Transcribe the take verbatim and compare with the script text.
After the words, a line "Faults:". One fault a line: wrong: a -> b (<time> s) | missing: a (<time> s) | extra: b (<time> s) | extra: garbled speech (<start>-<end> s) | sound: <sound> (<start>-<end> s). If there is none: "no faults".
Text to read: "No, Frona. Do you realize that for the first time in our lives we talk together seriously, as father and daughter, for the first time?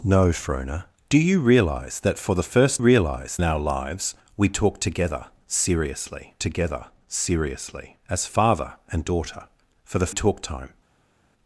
"No, Frona. Do you realize that for the first realize in our lives we talk together seriously together seriously, as father and daughter, for the talk time?
Faults:
wrong: time -> realize (2.8 s)
extra: together seriously (6.4 s)
wrong: first -> talk (10.1 s)